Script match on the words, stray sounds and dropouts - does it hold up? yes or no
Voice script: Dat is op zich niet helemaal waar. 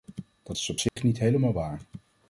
no